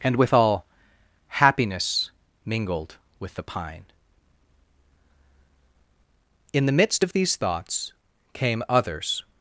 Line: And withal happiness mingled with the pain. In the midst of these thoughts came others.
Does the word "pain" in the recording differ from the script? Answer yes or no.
yes